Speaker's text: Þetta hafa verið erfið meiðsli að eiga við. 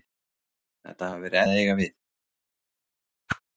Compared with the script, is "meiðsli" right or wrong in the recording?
wrong